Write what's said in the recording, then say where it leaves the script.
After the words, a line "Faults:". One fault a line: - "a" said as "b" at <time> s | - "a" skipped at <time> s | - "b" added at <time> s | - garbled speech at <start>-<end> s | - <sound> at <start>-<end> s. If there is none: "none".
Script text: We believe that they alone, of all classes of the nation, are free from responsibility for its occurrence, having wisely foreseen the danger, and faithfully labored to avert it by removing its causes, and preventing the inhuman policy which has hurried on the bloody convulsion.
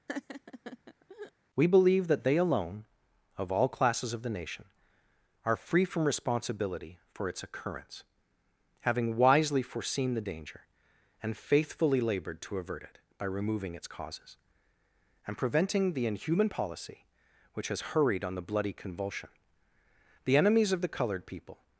We believe that they alone, of all classes of the nation, are free from responsibility for its occurrence, having wisely foreseen the danger, and faithfully labored to avert it by removing its causes, and preventing the inhuman policy which has hurried on the bloody convulsion. The enemies of the colored people
Faults:
- laugh at 0.1-1.3 s
- "The enemies of the colored people" added at 20.2 s